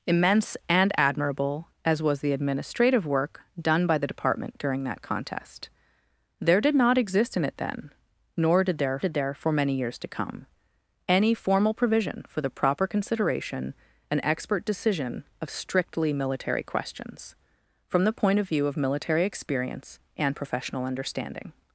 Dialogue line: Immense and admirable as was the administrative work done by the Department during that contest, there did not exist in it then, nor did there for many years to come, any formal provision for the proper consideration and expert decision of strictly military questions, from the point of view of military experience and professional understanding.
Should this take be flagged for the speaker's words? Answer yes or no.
yes